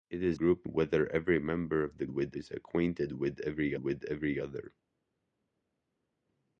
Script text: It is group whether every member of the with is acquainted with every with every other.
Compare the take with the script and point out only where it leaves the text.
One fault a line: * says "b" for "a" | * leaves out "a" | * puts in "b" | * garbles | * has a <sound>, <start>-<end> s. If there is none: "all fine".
all fine